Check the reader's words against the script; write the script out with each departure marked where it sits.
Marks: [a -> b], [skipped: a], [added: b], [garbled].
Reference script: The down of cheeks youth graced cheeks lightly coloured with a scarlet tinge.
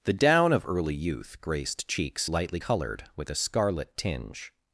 The down of [cheeks -> early] youth graced cheeks lightly coloured with a scarlet tinge.